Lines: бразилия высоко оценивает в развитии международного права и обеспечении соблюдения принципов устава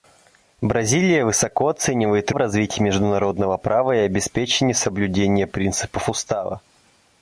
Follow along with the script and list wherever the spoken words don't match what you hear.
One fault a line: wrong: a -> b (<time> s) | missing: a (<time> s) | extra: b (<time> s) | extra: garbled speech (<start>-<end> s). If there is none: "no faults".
no faults